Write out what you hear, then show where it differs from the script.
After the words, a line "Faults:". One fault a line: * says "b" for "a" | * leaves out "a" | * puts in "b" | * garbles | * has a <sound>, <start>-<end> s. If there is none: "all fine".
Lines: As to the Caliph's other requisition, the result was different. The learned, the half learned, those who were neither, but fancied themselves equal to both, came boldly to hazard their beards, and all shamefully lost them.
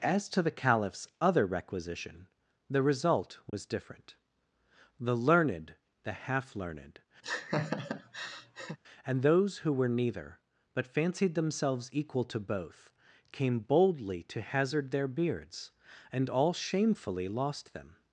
As to the Caliph's other requisition, the result was different. The learned, the half learned, and those who were neither, but fancied themselves equal to both, came boldly to hazard their beards, and all shamefully lost them.
Faults:
* has a dropout, 3.5-3.5 s
* has a laugh, 7.2-8.8 s
* puts in "and"